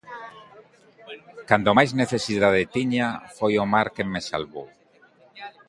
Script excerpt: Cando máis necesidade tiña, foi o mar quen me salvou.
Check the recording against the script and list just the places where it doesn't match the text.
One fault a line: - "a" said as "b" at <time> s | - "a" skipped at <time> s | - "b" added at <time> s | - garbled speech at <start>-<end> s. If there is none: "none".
none